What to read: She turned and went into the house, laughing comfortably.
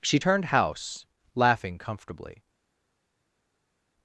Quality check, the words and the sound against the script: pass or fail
fail